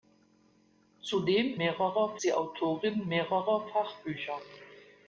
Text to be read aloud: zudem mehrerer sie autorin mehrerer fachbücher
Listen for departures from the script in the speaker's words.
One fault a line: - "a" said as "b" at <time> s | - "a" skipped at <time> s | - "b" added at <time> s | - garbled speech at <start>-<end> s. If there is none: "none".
none